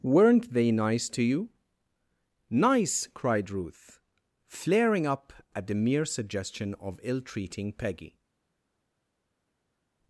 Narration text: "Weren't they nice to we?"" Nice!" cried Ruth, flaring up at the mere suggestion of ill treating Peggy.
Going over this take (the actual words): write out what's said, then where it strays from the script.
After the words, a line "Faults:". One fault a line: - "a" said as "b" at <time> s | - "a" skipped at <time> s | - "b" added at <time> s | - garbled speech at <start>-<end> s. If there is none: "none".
"Weren't they nice to you?"" Nice!" cried Ruth, flaring up at the mere suggestion of ill treating Peggy.
Faults:
- "we" said as "you" at 1.2 s